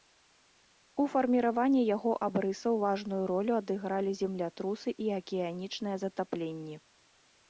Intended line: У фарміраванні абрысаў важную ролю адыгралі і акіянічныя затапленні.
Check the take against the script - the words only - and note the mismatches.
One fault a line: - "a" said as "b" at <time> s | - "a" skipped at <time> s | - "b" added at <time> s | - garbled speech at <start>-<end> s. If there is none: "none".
- "яго" added at 1.9 s
- "землятрусы" added at 4.2 s